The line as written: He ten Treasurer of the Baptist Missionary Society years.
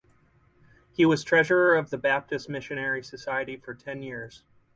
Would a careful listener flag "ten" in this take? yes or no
yes